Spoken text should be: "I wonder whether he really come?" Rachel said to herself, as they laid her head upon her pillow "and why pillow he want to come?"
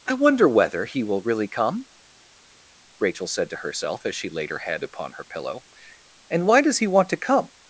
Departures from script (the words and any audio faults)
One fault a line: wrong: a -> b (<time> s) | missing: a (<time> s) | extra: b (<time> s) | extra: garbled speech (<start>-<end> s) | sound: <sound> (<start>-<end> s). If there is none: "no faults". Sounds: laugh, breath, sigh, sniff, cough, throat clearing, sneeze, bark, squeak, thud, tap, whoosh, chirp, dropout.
extra: will (1.0 s)
wrong: they -> she (4.1 s)
wrong: pillow -> does (6.6 s)